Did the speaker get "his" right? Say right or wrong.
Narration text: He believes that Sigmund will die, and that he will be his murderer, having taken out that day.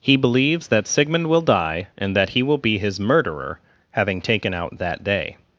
right